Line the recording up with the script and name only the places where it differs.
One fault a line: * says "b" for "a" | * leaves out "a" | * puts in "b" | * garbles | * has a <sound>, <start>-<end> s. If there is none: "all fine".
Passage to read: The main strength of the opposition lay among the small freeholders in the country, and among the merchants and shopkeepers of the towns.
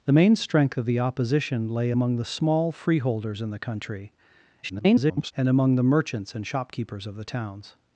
* garbles